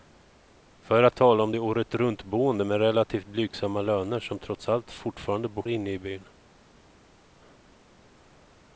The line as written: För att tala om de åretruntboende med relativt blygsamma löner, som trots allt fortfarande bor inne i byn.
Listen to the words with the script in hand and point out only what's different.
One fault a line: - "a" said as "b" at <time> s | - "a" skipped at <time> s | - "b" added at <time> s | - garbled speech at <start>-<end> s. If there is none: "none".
none